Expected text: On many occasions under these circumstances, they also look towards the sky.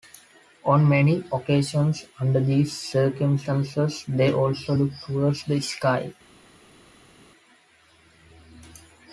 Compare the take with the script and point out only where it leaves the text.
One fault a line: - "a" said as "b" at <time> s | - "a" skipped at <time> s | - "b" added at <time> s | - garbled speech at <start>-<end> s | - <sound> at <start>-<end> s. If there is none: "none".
none